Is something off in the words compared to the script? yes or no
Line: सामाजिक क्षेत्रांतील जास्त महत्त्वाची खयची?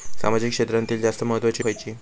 no